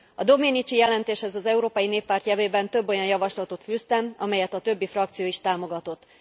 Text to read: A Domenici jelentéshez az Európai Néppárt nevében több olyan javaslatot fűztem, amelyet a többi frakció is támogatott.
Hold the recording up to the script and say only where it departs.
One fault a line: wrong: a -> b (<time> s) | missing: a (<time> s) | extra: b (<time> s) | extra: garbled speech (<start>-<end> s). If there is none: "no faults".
no faults